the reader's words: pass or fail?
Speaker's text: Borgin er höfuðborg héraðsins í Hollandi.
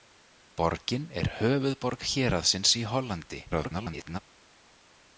fail